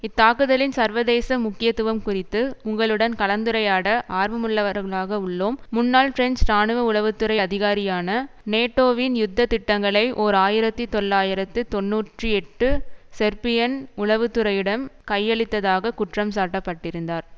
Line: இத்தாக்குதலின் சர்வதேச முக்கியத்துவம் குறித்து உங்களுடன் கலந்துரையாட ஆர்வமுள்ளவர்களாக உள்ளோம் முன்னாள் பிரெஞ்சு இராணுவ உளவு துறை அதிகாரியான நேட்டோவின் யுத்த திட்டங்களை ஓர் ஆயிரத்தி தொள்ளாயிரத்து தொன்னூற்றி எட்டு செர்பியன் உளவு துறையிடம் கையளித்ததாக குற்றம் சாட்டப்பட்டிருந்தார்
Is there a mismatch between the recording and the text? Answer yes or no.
no